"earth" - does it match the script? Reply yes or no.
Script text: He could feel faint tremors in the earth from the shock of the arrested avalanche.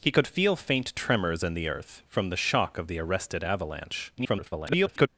yes